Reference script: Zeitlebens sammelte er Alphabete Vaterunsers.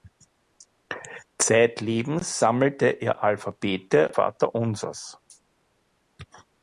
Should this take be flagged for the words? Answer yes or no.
no